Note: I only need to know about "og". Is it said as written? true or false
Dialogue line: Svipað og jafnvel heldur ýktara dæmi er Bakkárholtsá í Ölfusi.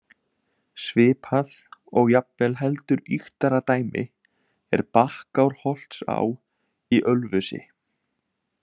true